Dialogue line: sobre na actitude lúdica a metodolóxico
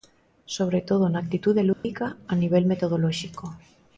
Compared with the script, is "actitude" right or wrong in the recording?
right